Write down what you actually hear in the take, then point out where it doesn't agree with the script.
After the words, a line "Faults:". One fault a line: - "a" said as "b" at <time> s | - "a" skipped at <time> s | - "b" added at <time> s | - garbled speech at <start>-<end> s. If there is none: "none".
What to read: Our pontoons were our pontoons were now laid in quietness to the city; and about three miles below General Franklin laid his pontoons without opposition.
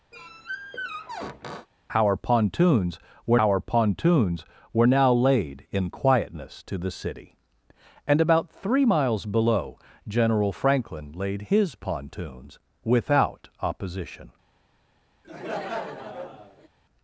Our pontoons were our pontoons were now laid in quietness to the city; and about three miles below General Franklin laid his pontoons without opposition.
Faults:
none